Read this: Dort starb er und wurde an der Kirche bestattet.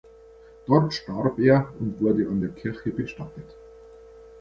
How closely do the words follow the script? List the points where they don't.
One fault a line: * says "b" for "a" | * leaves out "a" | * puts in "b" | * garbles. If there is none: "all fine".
all fine